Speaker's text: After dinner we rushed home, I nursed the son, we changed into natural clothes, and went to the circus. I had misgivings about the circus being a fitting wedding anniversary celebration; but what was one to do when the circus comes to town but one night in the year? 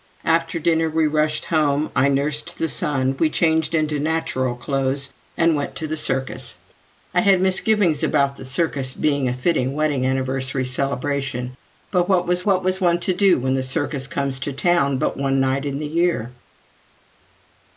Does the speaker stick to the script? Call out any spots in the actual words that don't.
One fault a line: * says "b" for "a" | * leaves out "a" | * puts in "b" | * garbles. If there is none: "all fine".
* puts in "what was"